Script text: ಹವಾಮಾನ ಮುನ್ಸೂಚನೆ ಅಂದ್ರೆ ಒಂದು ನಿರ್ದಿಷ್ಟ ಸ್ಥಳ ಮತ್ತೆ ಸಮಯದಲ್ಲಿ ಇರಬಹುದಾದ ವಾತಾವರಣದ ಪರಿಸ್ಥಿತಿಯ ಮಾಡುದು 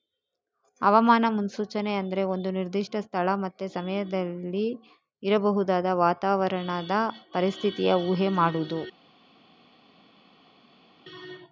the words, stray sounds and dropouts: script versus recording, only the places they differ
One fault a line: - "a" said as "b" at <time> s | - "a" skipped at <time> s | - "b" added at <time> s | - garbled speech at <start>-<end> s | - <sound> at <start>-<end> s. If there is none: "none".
- "ಊಹೆ" added at 8.1 s